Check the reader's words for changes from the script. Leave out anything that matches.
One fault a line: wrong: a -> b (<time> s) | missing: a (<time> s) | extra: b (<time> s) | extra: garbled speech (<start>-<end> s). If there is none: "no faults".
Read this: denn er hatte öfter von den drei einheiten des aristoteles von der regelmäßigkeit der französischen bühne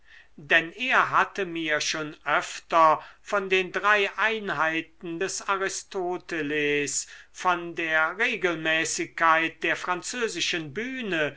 extra: mir schon (1.4 s)